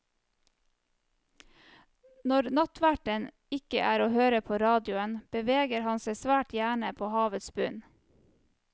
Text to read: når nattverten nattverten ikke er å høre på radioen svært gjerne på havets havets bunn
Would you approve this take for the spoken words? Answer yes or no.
no